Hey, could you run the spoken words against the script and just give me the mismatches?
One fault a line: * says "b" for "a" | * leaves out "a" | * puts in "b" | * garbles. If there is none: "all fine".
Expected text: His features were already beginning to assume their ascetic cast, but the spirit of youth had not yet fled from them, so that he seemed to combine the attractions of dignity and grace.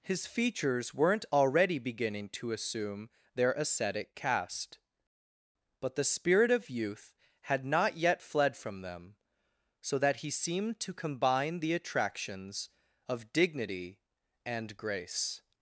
* says "weren't" for "were"